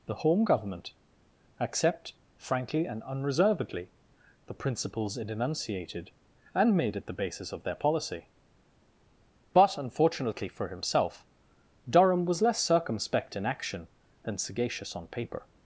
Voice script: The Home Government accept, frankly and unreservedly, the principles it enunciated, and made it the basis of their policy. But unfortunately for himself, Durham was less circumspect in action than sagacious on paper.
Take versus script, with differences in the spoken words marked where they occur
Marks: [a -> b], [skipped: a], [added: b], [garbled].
The Home Government accept, frankly and unreservedly, the principles it enunciated, and made it the basis of their policy. But unfortunately for himself, Durham was less circumspect in action than sagacious on paper.